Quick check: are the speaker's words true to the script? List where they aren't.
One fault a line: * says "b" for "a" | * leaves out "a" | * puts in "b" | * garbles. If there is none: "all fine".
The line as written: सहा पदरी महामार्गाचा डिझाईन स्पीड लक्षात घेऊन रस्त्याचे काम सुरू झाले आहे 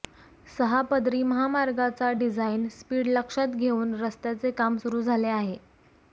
all fine